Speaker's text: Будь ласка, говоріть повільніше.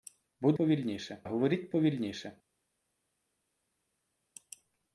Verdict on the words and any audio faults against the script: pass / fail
fail